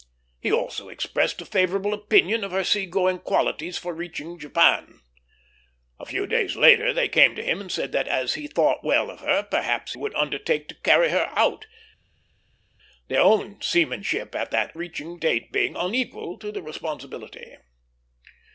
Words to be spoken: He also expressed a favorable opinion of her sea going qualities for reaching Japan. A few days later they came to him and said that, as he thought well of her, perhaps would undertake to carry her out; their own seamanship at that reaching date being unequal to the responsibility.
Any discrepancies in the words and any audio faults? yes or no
no